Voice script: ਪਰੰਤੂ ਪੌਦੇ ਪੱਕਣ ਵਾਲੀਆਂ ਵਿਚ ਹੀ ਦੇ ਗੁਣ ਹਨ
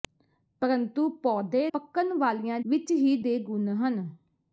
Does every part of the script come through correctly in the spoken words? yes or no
yes